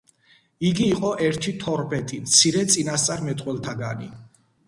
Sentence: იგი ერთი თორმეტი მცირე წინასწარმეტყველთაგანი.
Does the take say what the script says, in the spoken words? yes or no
no